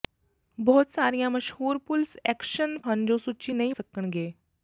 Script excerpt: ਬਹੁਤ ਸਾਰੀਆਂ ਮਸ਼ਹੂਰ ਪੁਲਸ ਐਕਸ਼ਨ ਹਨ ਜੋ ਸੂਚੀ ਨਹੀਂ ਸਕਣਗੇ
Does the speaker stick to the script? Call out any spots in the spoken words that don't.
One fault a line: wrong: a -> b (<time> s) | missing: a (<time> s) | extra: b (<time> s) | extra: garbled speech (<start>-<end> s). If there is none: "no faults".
no faults